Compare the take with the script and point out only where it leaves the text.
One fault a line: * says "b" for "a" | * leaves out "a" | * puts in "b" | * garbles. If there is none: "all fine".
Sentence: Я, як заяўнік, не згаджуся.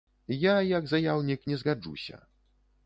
all fine